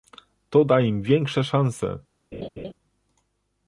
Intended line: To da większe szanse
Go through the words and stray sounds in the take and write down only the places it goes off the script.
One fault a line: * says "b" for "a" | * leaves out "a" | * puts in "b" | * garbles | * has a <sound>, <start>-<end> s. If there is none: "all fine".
* puts in "im"
* has a laugh, 2.3-2.7 s